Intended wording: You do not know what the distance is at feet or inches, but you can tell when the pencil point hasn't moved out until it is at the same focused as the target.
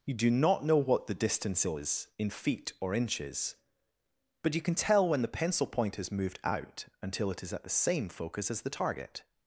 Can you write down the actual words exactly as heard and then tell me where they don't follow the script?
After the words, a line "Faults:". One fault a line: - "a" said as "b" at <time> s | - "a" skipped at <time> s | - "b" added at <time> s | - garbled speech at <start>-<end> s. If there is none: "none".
You do not know what the distance is in feet or inches, but you can tell when the pencil point has moved out until it is at the same focus as the target.
Faults:
- "at" said as "in" at 2.2 s
- "hasn't" said as "has" at 6.0 s
- "focused" said as "focus" at 8.1 s